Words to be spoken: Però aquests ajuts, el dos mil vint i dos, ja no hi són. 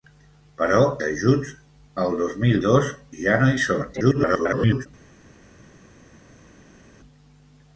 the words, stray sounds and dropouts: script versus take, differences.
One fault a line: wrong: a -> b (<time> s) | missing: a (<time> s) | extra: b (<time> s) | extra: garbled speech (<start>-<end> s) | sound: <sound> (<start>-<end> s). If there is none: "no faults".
missing: aquests (0.8 s)
missing: vint (2.6 s)
extra: garbled speech (3.9-4.9 s)